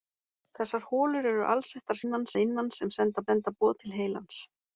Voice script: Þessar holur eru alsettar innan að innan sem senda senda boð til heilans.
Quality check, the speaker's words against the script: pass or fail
pass